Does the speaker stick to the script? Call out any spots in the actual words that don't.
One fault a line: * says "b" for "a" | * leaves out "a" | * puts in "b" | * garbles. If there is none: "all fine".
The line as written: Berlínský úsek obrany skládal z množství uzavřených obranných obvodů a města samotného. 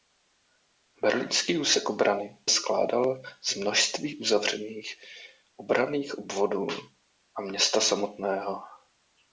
all fine